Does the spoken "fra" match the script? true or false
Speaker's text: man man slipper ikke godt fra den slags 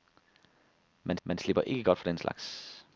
true